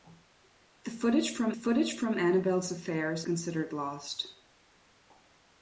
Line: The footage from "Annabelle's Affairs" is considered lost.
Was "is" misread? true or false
true